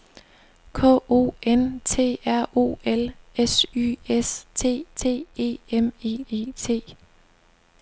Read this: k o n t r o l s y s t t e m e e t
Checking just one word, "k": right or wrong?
right